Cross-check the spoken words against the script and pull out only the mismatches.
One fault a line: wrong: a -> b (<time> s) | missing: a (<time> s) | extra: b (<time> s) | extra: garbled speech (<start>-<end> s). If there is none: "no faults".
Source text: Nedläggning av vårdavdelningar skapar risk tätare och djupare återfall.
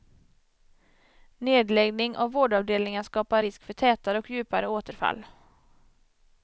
extra: för (3.6 s)